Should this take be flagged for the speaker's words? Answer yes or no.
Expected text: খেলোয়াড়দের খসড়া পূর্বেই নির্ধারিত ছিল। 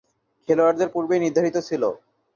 yes